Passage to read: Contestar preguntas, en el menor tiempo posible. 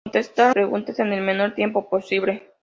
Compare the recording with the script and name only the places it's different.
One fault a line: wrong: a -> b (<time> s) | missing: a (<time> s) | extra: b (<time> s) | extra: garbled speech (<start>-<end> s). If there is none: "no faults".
no faults